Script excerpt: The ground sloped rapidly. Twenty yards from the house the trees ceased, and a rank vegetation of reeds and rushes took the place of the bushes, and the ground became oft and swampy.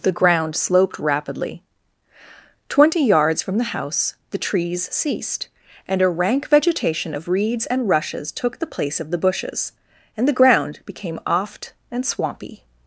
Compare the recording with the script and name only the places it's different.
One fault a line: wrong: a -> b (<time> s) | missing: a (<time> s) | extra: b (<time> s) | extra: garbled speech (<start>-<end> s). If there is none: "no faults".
no faults